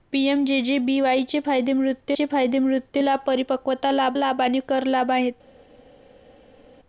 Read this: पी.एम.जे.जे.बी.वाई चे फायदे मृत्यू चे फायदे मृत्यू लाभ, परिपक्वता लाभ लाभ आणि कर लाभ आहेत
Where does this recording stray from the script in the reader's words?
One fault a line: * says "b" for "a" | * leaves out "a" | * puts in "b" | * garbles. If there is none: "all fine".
all fine